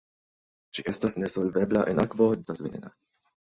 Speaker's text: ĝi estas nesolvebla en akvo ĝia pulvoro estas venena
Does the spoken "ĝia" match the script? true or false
false